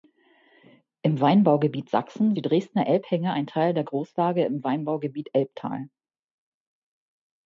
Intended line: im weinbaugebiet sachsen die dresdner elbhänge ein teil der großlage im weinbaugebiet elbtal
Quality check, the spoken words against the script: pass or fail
pass